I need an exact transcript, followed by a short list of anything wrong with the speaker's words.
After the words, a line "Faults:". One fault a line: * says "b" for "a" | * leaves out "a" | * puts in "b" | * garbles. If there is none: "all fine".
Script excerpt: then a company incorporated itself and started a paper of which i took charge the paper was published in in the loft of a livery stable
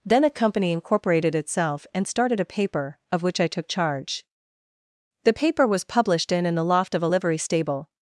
then a company incorporated itself and started a paper of which i took charge the paper was published in in the loft of a livery stable
Faults:
all fine